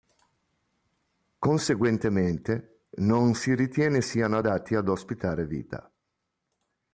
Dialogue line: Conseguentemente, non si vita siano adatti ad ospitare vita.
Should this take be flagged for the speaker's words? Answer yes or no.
yes